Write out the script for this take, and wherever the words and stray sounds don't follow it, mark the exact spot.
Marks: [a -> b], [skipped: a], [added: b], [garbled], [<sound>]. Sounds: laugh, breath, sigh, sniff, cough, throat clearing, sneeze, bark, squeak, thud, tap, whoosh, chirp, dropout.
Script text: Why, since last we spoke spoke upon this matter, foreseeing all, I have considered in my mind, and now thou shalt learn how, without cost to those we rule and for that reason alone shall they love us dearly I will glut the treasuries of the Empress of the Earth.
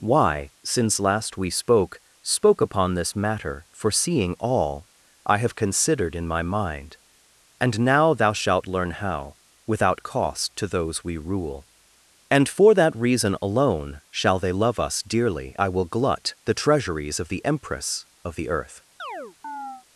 Why, since last we spoke spoke upon this matter, foreseeing all, I have considered in my mind, and now thou shalt learn how, without cost to those we rule and for that reason alone shall they love us dearly I will glut the treasuries of the Empress of the Earth. [chirp]